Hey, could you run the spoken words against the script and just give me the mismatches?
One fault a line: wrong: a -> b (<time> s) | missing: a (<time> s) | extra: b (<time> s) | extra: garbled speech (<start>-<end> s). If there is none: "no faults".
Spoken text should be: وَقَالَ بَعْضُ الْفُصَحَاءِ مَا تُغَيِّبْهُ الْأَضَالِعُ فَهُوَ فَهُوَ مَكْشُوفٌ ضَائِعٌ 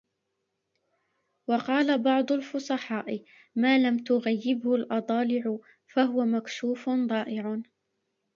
extra: لَمْ (3.8 s)
missing: فَهُوَ (6.3 s)